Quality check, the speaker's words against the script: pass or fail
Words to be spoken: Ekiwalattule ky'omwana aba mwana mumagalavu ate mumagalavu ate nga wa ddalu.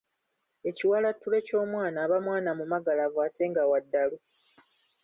fail